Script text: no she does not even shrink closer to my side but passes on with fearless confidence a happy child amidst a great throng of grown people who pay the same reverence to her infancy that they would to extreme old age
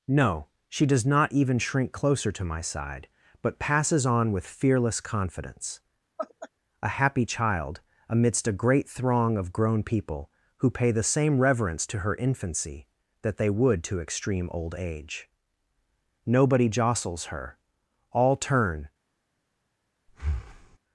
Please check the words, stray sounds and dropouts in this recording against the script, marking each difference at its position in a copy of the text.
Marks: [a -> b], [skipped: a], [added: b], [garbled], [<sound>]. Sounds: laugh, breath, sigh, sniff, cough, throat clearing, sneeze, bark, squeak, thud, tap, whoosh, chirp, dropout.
no she does not even shrink closer to my side but passes on with fearless confidence [laugh] a happy child amidst a great throng of grown people who pay the same reverence to her infancy that they would to extreme old age [added: nobody jostles her all turn] [breath]